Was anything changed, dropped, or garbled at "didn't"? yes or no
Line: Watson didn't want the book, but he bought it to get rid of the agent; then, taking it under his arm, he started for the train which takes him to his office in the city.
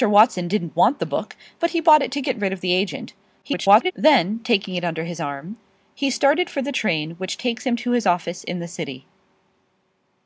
no